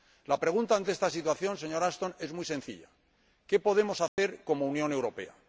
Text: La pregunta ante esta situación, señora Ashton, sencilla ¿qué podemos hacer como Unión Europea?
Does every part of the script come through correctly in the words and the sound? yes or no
no